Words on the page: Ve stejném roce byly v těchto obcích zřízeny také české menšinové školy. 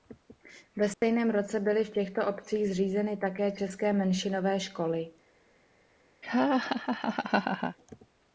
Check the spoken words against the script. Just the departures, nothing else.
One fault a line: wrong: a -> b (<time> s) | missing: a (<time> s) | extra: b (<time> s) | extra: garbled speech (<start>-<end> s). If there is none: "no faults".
no faults